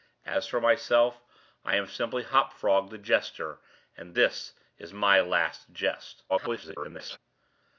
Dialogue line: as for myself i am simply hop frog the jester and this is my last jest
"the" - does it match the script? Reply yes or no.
yes